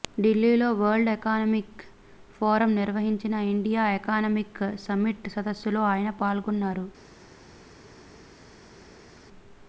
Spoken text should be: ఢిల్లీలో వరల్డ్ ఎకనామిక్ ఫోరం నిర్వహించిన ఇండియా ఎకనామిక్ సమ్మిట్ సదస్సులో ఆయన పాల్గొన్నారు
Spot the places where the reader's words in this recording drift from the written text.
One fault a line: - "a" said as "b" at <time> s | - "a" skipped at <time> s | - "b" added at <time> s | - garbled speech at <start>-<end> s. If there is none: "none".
none